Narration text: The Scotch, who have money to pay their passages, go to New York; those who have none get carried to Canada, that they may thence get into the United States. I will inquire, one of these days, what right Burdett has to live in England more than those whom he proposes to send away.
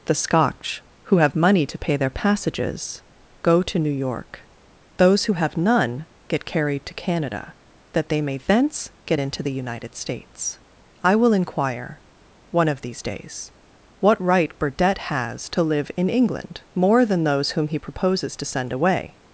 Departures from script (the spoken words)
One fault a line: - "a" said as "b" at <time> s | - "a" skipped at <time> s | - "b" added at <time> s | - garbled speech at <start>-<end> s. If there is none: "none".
none